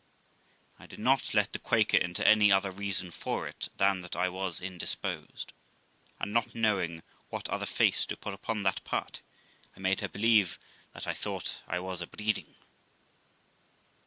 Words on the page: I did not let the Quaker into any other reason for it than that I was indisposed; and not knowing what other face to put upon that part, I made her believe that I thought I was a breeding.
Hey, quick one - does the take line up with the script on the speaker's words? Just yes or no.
yes